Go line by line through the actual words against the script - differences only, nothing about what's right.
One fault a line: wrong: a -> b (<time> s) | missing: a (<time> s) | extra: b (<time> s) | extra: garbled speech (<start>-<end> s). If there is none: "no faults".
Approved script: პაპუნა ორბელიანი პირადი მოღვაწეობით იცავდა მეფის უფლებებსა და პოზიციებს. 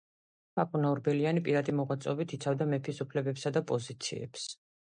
no faults